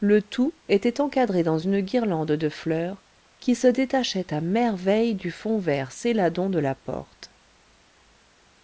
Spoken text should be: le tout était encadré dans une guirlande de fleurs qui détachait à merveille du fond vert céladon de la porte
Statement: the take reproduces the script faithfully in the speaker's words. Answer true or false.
false